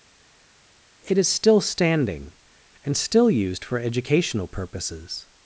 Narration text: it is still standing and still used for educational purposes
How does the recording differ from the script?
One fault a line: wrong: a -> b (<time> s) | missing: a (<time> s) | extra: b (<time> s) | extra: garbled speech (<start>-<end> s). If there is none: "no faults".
no faults